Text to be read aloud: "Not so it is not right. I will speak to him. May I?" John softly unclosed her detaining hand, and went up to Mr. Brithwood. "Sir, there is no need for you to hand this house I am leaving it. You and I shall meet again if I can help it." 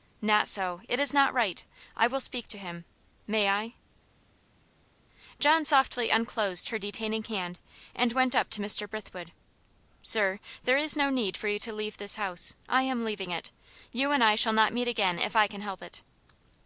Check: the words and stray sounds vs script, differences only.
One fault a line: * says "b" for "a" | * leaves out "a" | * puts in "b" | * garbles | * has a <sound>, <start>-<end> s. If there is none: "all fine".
* says "leave" for "hand"
* puts in "not"